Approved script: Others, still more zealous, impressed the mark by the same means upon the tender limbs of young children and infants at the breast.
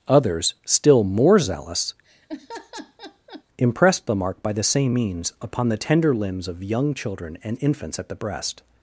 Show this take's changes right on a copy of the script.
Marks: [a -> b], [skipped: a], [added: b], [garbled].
Others, still more zealous, impressed the mark by the same means upon the tender limbs of young children and infants at the breast.